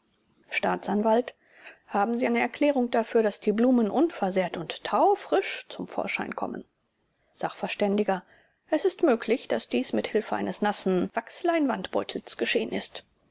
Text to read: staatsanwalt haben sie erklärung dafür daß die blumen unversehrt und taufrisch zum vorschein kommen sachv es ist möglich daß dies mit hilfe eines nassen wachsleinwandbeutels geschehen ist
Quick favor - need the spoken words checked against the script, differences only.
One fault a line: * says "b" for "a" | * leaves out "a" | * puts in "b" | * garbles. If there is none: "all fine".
* puts in "eine"